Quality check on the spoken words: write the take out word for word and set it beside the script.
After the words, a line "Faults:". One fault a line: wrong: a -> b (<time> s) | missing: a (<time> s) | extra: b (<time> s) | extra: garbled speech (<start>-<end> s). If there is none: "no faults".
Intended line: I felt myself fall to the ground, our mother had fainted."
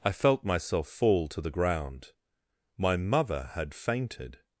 I felt myself fall to the ground, my mother had fainted."
Faults:
wrong: our -> my (2.8 s)